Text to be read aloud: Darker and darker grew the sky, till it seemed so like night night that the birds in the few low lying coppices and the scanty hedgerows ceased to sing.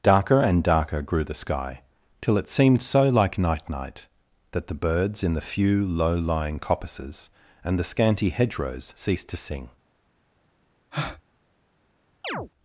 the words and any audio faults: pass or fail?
fail